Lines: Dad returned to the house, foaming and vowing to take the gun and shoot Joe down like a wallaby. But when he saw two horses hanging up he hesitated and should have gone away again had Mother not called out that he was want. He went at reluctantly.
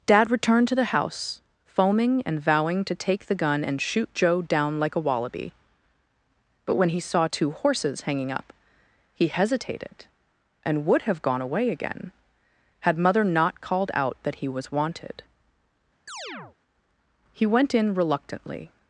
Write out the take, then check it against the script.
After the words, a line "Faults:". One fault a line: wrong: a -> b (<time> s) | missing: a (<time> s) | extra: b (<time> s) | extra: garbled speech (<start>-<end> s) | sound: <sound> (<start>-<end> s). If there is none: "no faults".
Dad returned to the house, foaming and vowing to take the gun and shoot Joe down like a wallaby. But when he saw two horses hanging up he hesitated and would have gone away again had Mother not called out that he was wanted. He went in reluctantly.
Faults:
wrong: should -> would (10.9 s)
wrong: want -> wanted (14.7 s)
sound: chirp (16.1-16.6 s)
wrong: at -> in (17.7 s)